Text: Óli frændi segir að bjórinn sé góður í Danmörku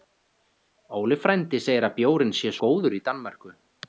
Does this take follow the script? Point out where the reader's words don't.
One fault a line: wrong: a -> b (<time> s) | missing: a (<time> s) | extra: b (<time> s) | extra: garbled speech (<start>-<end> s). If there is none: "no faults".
no faults